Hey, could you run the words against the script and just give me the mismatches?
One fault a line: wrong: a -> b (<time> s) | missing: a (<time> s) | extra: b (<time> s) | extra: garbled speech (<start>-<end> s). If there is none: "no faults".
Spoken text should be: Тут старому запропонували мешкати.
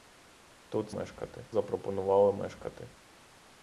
wrong: старому -> мешкати (0.9 s)